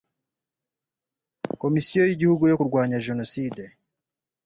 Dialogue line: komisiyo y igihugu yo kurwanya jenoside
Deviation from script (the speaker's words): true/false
false